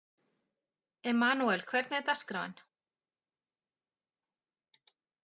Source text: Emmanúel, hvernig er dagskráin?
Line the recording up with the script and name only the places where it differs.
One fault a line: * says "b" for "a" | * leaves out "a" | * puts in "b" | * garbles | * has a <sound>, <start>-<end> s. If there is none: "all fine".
all fine